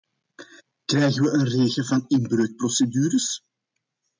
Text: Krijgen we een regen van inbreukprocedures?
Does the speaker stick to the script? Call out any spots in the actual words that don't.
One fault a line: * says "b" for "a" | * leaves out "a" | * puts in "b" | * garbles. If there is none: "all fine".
all fine